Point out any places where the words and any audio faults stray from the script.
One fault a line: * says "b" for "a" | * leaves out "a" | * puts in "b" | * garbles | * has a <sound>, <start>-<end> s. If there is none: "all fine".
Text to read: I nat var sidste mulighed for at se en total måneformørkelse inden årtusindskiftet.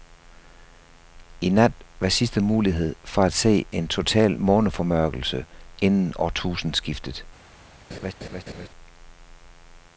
* has a laugh, 7.9-8.7 s